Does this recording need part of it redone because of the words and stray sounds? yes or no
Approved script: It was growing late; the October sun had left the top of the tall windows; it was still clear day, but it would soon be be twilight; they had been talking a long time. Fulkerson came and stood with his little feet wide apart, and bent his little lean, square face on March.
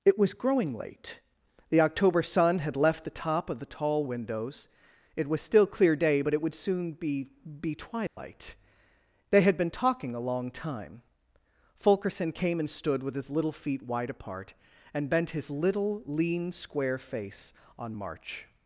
yes